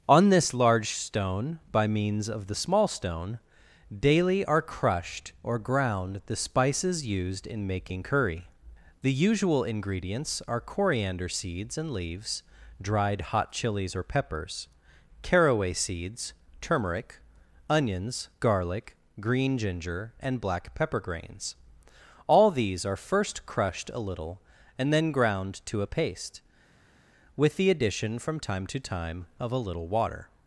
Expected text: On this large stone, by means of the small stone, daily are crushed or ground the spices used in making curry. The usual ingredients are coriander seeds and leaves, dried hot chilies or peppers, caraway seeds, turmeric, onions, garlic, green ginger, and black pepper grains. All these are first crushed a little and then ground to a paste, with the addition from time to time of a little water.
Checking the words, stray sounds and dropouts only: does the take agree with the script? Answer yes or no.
yes